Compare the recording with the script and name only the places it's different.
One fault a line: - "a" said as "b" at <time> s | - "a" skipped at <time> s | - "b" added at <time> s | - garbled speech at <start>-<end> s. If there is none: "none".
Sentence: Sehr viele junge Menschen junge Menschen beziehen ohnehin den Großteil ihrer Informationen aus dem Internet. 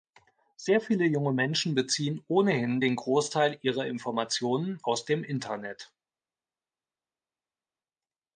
- "junge Menschen" skipped at 1.8 s